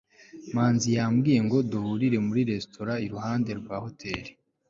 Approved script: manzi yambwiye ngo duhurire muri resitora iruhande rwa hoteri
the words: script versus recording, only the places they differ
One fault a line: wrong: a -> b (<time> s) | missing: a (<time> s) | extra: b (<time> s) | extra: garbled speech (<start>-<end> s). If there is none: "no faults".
no faults